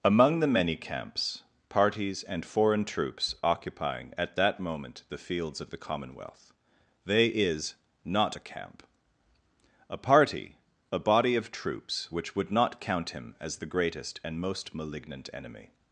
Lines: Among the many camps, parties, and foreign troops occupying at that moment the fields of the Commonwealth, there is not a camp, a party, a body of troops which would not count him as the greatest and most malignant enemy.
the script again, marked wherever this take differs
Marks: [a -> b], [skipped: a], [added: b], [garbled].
Among the many camps, parties, and foreign troops occupying at that moment the fields of the Commonwealth, [there -> they] is not a camp, a party, a body of troops which would not count him as the greatest and most malignant enemy.